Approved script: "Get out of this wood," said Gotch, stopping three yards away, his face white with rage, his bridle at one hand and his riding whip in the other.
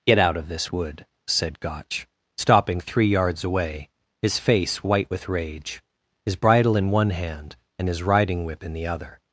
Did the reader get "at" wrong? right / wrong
wrong